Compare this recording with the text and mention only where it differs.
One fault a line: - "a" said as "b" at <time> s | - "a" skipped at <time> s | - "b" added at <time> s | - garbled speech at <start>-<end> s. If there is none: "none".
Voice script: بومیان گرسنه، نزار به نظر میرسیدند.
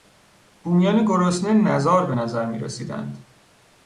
none